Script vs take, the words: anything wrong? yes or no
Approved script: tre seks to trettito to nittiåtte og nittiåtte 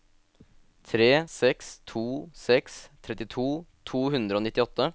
yes